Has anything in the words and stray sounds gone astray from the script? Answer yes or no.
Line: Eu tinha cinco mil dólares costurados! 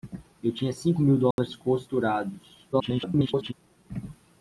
yes